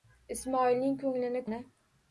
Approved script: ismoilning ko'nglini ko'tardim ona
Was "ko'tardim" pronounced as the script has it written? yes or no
no